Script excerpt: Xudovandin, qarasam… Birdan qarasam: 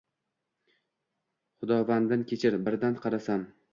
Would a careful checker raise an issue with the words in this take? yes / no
yes